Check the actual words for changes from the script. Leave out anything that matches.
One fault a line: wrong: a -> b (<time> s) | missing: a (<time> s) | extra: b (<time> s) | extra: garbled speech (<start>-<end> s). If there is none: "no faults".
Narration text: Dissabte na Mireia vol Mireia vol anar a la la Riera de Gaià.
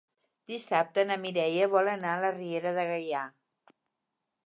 missing: Mireia vol (1.9 s)
missing: la (2.4 s)